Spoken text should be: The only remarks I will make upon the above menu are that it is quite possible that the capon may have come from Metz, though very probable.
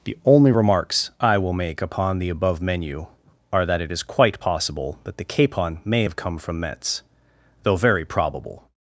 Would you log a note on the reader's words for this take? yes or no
no